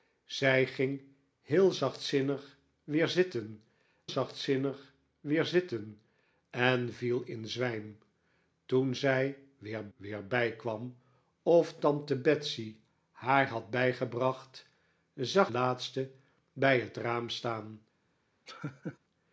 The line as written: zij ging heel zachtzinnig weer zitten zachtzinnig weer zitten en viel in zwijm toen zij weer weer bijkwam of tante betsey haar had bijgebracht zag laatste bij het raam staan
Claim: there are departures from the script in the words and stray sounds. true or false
true